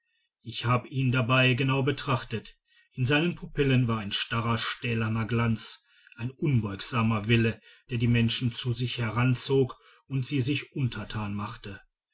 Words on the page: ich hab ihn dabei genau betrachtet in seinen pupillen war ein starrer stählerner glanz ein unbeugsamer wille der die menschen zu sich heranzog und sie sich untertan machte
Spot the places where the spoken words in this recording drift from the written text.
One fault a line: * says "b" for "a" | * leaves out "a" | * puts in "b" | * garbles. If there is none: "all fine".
all fine